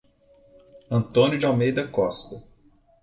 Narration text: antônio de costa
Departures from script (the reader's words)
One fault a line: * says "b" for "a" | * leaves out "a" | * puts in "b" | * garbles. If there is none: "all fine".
* puts in "almeida"